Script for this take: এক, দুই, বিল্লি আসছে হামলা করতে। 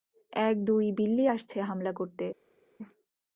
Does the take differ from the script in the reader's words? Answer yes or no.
no